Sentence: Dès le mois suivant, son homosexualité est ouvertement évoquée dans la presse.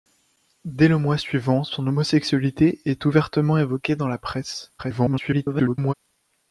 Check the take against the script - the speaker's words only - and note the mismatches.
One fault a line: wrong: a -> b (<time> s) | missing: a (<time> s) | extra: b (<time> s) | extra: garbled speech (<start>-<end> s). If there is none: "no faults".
extra: garbled speech (4.8-5.9 s)